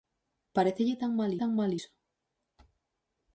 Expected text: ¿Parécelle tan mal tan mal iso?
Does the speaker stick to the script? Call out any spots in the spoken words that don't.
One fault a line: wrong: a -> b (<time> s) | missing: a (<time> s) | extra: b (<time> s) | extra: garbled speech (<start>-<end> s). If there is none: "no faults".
no faults